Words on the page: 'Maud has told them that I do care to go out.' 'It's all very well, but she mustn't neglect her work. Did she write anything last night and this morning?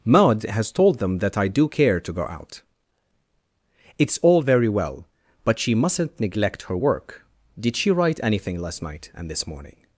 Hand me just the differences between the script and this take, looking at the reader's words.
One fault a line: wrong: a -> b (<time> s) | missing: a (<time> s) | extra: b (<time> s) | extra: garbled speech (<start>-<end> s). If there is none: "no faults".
no faults